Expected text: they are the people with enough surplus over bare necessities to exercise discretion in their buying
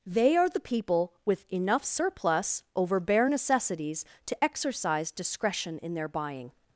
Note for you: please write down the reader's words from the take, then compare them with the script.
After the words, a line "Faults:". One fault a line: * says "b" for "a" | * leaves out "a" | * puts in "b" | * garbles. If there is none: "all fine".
they are the people with enough surplus over bare necessities to exercise discretion in their buying
Faults:
all fine